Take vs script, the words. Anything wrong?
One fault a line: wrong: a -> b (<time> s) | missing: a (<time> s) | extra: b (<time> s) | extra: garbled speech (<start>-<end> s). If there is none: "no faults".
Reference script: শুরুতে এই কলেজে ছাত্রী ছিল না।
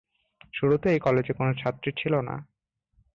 extra: কোন (1.3 s)